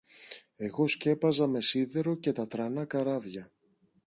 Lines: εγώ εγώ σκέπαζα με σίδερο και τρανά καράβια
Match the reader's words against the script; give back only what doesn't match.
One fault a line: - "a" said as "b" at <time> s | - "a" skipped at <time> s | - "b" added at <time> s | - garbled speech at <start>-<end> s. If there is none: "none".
- "εγώ" skipped at 0.9 s
- "τα" added at 2.3 s